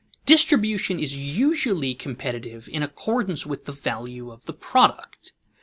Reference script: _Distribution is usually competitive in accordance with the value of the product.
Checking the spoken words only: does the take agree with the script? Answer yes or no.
yes